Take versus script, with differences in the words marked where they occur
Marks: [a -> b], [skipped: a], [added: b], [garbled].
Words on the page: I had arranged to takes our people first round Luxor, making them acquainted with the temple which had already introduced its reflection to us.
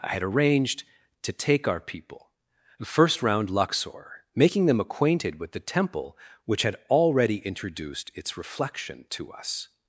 I had arranged to [takes -> take] our people first round Luxor, making them acquainted with the temple which had already introduced its reflection to us.